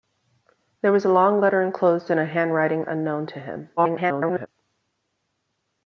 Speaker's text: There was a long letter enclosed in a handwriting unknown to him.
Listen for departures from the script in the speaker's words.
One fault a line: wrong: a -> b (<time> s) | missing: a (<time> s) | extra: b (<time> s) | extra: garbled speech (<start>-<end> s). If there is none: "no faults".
extra: garbled speech (3.8-4.5 s)